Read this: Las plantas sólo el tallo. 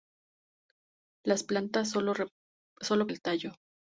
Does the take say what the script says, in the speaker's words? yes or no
yes